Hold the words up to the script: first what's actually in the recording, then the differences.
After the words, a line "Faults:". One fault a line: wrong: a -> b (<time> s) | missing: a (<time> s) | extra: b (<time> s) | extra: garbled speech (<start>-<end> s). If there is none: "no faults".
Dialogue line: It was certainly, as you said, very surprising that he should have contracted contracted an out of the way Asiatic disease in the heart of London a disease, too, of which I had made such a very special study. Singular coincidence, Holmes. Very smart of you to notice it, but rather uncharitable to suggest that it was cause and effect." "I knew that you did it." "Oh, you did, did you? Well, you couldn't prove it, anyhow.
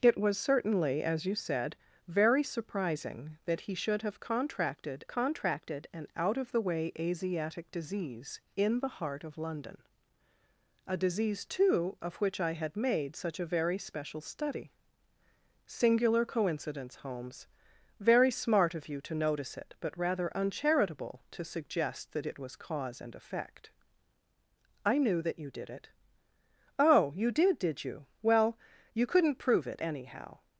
It was certainly, as you said, very surprising that he should have contracted contracted an out of the way Asiatic disease in the heart of London a disease, too, of which I had made such a very special study. Singular coincidence, Holmes. Very smart of you to notice it, but rather uncharitable to suggest that it was cause and effect." "I knew that you did it." "Oh, you did, did you? Well, you couldn't prove it, anyhow.
Faults:
no faults